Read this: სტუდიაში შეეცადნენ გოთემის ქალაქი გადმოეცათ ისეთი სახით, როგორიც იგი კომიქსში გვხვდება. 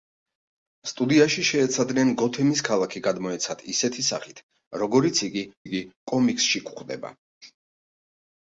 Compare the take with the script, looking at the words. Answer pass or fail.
fail